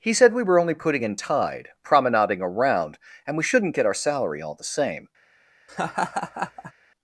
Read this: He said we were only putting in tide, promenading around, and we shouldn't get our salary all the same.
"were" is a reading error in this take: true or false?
false